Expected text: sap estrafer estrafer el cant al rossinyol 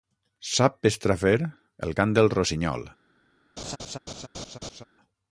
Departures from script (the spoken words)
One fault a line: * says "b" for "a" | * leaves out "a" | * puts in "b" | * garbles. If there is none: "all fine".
* leaves out "estrafer"
* says "del" for "al"